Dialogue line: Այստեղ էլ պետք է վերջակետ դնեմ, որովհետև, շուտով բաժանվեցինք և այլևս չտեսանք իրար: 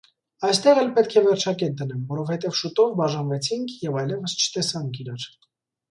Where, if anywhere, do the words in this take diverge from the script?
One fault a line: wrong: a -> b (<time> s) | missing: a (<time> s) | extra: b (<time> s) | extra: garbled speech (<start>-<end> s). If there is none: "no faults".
no faults